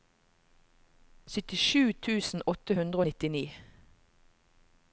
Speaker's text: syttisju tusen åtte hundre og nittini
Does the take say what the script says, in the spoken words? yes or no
yes